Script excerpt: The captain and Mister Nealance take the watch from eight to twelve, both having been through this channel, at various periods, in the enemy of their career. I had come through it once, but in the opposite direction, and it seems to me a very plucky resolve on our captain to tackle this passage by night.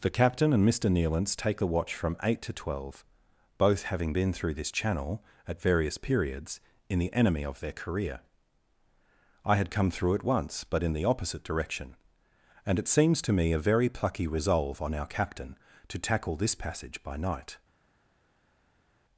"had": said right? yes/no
yes